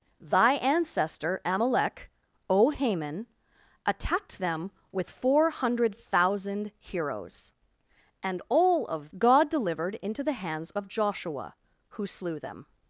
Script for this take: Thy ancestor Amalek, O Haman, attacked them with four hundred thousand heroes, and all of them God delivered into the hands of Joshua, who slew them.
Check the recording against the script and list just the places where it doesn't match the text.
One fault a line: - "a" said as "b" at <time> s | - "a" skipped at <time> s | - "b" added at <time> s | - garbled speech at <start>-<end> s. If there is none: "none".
- "them" skipped at 9.1 s